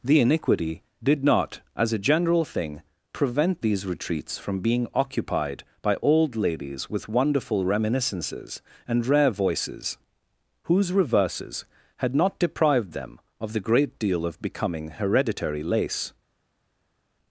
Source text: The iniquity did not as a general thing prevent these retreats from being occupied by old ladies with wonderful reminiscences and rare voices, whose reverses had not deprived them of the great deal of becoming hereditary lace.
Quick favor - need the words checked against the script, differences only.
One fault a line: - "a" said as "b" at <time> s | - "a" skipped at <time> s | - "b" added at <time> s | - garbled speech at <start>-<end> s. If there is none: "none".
none